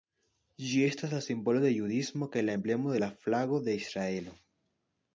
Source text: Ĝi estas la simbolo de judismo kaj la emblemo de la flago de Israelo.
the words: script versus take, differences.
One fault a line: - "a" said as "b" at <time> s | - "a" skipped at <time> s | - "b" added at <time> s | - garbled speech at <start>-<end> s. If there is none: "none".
none